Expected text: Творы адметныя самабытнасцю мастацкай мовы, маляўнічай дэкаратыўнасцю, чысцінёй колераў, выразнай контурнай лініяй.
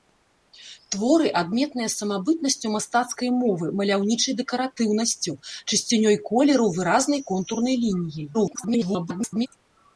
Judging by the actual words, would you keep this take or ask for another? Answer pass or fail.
fail